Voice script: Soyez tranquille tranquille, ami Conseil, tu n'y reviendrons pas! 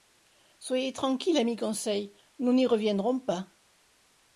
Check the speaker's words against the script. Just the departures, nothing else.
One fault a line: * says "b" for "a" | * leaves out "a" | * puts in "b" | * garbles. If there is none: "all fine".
* leaves out "tranquille"
* says "nous" for "tu"